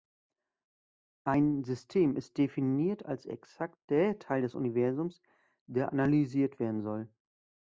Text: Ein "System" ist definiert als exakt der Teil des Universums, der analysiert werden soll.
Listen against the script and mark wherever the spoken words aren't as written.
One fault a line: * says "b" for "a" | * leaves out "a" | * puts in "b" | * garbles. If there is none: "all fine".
all fine